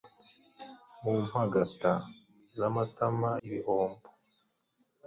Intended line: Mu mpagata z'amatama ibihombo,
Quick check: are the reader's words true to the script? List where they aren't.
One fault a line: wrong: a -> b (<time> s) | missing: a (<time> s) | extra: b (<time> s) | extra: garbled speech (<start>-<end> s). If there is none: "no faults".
no faults